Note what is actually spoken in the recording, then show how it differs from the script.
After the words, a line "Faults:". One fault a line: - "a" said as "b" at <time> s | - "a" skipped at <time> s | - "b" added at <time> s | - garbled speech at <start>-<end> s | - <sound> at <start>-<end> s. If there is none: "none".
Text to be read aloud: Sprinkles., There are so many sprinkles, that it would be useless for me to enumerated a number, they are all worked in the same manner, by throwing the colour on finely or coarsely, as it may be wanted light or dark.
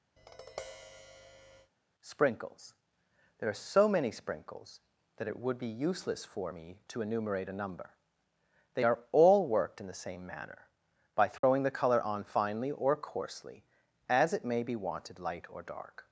Sprinkles., There are so many sprinkles, that it would be useless for me to enumerate a number, they are all worked in the same manner, by throwing the colour on finely or coarsely, as it may be wanted light or dark.
Faults:
- tap at 0.2-1.7 s
- "enumerated" said as "enumerate" at 7.0 s
- dropout at 11.4-11.4 s